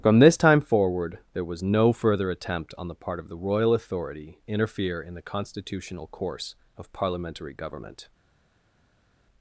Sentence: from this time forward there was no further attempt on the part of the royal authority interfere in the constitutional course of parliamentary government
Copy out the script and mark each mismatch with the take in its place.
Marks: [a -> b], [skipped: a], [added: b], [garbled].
from this time forward there was no further attempt on the part of the royal authority interfere in the constitutional course of parliamentary government